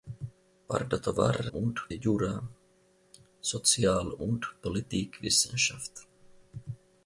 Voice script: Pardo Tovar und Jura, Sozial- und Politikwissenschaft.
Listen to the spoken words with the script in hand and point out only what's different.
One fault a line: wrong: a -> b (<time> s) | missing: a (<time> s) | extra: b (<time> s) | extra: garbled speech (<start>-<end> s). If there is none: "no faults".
no faults